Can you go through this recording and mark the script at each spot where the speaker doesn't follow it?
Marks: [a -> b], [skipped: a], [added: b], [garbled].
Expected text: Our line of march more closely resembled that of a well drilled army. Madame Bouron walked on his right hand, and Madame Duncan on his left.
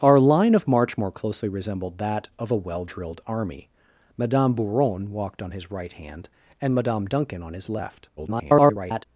Our line of march more closely resembled that of a well drilled army. Madame Bouron walked on his right hand, and Madame Duncan on his left. [garbled]